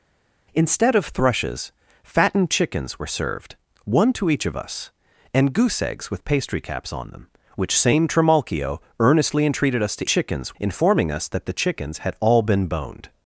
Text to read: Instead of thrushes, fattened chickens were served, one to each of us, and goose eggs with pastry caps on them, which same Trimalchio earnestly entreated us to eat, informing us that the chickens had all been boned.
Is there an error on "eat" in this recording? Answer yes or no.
yes